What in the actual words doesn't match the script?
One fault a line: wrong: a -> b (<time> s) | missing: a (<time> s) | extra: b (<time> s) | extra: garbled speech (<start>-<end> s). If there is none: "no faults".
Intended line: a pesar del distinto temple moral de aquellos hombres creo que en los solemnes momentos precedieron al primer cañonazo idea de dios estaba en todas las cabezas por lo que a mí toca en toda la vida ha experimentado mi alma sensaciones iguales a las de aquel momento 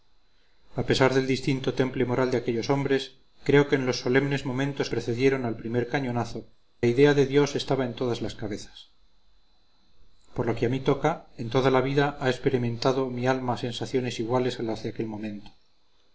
no faults